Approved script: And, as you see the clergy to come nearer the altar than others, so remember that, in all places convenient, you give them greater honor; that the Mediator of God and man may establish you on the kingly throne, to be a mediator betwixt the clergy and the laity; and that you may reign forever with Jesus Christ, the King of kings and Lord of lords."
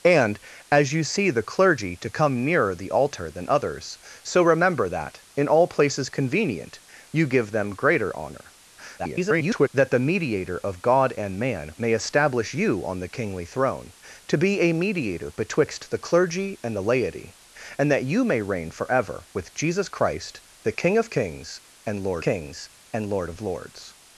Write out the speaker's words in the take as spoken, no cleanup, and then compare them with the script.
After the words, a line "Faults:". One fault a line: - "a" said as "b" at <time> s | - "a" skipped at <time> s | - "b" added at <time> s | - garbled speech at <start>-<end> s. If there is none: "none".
And, as you see the clergy to come nearer the altar than others, so remember that, in all places convenient, you give them greater honor; [garbled] that the Mediator of God and man may establish you on the kingly throne, to be a mediator betwixt the clergy and the laity; and that you may reign forever with Jesus Christ, the King of kings and Lord kings and Lord of lords."
Faults:
- garbled speech at 9.0-9.7 s
- "kings and Lord" added at 22.2 s